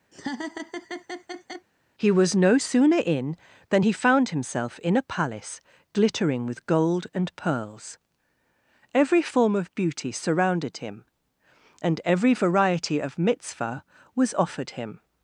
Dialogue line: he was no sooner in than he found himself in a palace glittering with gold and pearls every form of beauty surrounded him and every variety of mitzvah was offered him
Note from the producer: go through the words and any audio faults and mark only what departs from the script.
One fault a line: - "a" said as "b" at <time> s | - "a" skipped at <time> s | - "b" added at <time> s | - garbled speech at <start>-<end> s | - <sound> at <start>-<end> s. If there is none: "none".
- laugh at 0.1-1.7 s